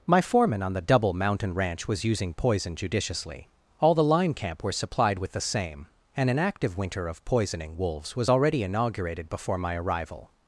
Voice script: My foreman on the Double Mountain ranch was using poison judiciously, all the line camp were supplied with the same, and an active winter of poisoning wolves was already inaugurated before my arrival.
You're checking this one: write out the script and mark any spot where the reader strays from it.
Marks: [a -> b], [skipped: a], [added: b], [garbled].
My foreman on the Double Mountain ranch was using poison judiciously, all the line camp were supplied with the same, and an active winter of poisoning wolves was already inaugurated before my arrival.